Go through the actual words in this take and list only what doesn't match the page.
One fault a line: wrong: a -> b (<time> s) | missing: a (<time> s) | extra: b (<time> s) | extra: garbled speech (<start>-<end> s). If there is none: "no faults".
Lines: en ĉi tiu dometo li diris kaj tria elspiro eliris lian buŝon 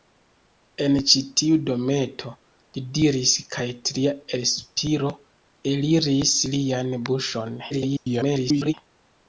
extra: garbled speech (7.7-8.7 s)